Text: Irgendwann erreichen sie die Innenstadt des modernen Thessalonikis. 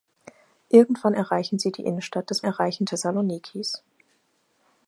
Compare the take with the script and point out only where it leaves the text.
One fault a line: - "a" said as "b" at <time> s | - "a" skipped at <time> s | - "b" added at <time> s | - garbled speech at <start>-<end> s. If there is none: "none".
- "modernen" said as "erreichen" at 2.4 s